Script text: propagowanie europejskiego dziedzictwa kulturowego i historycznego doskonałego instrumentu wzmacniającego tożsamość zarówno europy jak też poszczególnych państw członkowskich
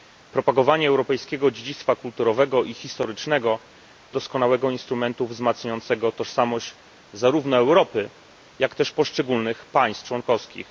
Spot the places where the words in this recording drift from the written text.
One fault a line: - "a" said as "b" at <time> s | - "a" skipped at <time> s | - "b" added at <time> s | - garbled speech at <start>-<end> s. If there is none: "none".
none